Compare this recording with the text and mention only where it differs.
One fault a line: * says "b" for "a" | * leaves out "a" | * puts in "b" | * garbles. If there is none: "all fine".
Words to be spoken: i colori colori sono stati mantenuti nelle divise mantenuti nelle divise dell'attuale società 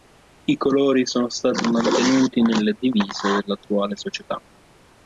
* leaves out "colori"
* leaves out "mantenuti nelle divise"